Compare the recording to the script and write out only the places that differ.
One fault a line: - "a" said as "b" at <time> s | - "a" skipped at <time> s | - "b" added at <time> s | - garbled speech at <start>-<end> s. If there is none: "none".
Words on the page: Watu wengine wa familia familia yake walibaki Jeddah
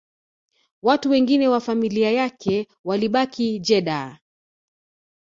- "familia" skipped at 2.1 s